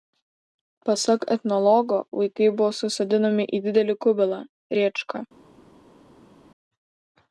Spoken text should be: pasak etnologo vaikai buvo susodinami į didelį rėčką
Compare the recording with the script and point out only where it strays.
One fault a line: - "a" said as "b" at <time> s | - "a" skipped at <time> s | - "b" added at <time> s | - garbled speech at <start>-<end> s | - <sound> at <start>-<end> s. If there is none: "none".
- "kubilą" added at 4.1 s